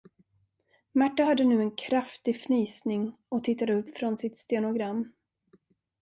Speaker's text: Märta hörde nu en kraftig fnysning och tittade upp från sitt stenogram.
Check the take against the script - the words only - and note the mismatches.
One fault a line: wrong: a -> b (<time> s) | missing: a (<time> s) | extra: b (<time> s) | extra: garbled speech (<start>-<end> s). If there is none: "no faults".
no faults